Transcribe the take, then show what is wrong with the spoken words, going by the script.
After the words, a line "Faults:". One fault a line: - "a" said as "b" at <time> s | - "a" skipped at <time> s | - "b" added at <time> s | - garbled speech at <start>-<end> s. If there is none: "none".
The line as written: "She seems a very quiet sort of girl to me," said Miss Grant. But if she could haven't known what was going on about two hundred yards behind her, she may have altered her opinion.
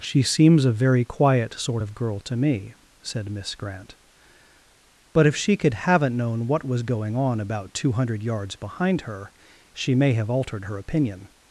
"She seems a very quiet sort of girl to me," said Miss Grant. But if she could haven't known what was going on about two hundred yards behind her, she may have altered her opinion.
Faults:
none